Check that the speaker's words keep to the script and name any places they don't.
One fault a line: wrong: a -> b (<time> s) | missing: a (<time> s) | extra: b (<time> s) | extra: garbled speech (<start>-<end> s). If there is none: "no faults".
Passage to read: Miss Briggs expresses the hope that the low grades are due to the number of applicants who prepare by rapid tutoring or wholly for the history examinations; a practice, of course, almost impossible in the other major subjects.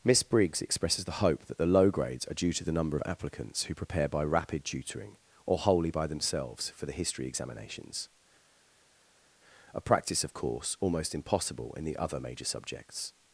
extra: by themselves (5.9 s)